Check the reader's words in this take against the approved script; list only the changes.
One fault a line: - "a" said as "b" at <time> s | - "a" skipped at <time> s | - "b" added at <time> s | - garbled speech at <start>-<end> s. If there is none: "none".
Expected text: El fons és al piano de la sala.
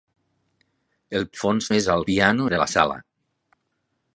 none